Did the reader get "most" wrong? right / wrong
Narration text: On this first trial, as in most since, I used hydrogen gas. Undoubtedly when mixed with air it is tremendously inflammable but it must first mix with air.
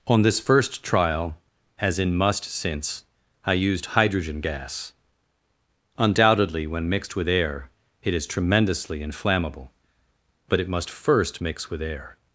wrong